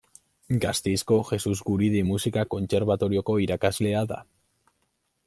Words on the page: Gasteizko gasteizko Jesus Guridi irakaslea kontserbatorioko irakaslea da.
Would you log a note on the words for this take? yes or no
yes